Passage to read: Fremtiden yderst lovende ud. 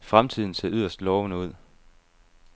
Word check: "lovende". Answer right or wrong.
right